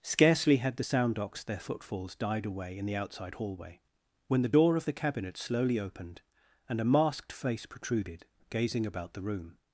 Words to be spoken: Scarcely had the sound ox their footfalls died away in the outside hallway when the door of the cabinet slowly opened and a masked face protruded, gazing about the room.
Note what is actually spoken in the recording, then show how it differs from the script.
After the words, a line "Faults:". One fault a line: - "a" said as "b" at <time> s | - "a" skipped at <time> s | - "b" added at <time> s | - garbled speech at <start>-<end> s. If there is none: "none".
Scarcely had the sound ox their footfalls died away in the outside hallway when the door of the cabinet slowly opened and a masked face protruded, gazing about the room.
Faults:
none